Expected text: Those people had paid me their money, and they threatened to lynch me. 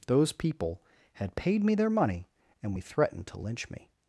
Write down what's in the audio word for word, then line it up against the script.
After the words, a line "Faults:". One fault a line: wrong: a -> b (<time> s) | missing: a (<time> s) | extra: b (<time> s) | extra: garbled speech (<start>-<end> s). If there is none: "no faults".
Those people had paid me their money, and we threatened to lynch me.
Faults:
wrong: they -> we (2.7 s)